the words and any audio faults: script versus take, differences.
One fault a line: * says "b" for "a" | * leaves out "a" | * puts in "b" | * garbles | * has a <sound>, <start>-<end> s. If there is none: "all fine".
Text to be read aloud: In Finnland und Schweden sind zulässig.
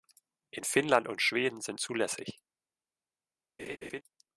* has a laugh, 3.6-4.0 s